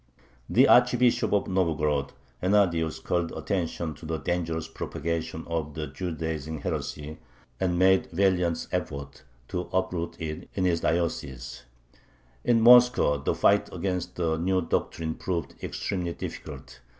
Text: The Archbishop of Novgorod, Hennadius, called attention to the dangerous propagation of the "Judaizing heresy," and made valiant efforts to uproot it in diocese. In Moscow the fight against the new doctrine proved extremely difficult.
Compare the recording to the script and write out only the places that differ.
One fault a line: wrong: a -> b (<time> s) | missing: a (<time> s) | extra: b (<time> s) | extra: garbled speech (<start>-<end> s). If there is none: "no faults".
extra: his (10.6 s)